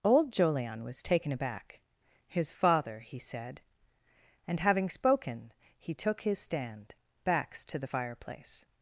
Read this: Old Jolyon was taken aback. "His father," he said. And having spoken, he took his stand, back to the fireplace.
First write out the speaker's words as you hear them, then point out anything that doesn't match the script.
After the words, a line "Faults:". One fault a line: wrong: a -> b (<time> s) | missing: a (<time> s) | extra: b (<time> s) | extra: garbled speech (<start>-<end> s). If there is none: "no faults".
Old Jolyon was taken aback. "His father," he said. And having spoken, he took his stand, backs to the fireplace.
Faults:
wrong: back -> backs (7.2 s)